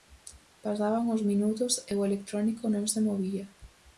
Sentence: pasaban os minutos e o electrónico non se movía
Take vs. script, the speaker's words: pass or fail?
pass